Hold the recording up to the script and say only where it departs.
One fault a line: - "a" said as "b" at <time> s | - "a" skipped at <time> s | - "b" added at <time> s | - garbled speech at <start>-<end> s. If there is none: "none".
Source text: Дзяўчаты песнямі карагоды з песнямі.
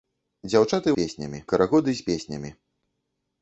none